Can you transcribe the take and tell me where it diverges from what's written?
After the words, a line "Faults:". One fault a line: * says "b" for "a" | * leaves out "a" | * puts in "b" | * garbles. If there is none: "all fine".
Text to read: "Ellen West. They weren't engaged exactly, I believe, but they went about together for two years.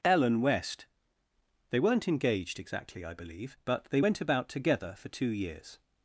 "Ellen West. They weren't engaged exactly, I believe, but they went about together for two years.
Faults:
all fine